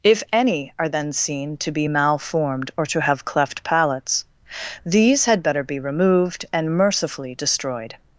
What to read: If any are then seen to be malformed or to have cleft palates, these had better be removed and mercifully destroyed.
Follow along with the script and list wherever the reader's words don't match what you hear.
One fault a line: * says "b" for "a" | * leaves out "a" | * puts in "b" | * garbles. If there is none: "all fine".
all fine